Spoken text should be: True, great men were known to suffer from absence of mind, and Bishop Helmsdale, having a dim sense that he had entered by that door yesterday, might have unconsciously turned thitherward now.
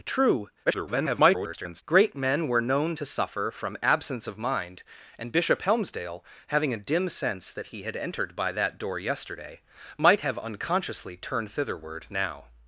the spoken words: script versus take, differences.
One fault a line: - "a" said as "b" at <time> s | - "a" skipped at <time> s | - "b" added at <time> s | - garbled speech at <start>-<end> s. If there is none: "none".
- garbled speech at 0.7-1.8 s